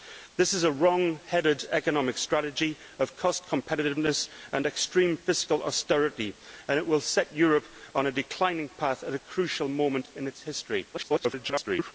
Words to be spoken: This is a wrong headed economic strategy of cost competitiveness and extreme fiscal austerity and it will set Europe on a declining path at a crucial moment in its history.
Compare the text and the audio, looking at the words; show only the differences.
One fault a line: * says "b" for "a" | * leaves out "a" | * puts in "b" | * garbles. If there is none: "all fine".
* garbles